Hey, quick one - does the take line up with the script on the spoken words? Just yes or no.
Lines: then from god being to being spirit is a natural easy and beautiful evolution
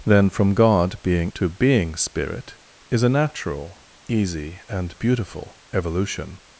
yes